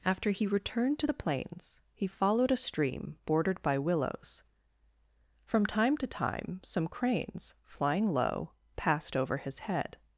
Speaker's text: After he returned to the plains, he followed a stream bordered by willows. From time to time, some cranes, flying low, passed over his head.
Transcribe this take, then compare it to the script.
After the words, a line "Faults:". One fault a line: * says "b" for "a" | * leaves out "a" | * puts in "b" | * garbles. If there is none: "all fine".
After he returned to the plains, he followed a stream bordered by willows. From time to time, some cranes, flying low, passed over his head.
Faults:
all fine